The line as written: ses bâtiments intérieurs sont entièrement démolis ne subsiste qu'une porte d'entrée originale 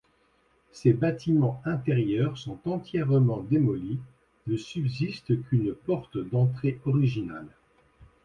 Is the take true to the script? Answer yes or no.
yes